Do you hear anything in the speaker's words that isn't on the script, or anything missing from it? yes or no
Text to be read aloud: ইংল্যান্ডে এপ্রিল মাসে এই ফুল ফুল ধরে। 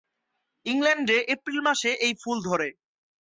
yes